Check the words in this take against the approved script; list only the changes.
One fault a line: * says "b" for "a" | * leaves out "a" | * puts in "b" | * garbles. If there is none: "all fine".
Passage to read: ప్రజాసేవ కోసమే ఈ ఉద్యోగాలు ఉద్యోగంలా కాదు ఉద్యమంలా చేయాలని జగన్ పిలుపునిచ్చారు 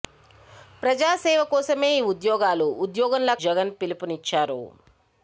* leaves out "కాదు ఉద్యమంలా చేయాలని"